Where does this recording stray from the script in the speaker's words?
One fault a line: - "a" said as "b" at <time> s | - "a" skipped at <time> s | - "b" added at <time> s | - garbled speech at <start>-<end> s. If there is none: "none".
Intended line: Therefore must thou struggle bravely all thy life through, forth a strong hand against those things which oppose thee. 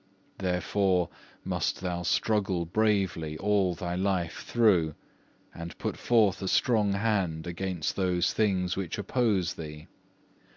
- "and put" added at 5.5 s